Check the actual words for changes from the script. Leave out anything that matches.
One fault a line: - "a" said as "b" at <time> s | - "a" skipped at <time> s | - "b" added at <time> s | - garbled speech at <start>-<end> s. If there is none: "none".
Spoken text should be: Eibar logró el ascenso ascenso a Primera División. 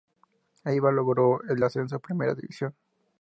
- "ascenso" skipped at 2.0 s